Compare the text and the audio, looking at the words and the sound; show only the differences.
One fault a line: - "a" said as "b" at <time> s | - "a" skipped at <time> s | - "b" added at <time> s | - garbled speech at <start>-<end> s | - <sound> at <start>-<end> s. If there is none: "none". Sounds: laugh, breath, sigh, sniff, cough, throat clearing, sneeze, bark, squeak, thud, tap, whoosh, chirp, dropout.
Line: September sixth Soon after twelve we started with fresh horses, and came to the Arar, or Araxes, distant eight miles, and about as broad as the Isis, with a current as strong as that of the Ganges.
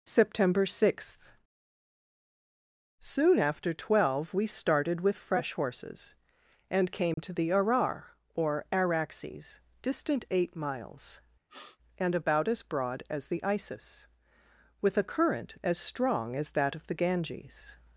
- dropout at 7.1-7.2 s
- sniff at 11.5-11.8 s